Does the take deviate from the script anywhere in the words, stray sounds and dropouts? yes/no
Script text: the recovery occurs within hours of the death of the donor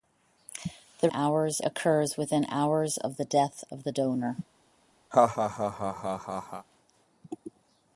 yes